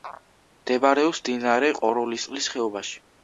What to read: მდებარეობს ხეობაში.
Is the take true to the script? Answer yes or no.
no